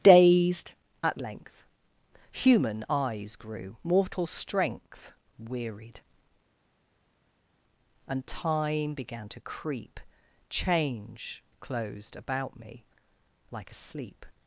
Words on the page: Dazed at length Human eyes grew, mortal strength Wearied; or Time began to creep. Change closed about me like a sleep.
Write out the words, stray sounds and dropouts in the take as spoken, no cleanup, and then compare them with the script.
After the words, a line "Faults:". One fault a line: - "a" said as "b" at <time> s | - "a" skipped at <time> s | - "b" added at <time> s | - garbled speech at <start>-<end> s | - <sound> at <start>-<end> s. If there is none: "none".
Dazed at length Human eyes grew, mortal strength Wearied; and Time began to creep. Change closed about me like a sleep.
Faults:
- "or" said as "and" at 8.1 s